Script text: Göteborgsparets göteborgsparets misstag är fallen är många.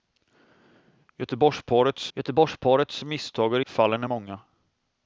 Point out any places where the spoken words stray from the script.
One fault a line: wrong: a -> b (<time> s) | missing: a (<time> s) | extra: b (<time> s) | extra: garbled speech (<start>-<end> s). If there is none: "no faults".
no faults